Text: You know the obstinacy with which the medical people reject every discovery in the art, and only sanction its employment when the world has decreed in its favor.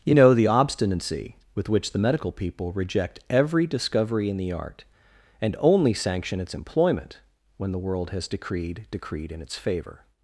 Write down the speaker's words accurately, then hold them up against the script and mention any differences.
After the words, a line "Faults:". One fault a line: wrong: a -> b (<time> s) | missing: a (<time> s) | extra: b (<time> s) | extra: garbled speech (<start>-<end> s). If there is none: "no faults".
You know the obstinacy with which the medical people reject every discovery in the art, and only sanction its employment when the world has decreed decreed in its favor.
Faults:
extra: decreed (8.9 s)